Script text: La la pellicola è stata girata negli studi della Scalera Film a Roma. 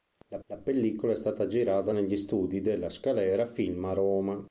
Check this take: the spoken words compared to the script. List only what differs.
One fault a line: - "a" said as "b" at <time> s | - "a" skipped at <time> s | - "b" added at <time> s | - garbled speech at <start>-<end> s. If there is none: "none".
none